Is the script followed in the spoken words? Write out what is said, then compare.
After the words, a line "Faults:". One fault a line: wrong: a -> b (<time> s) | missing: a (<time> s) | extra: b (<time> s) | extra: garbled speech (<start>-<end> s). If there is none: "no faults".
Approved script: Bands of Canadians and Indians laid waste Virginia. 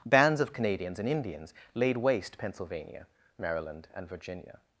Bands of Canadians and Indians laid waste Pennsylvania, Maryland, and Virginia.
Faults:
extra: Pennsylvania Maryland and (2.4 s)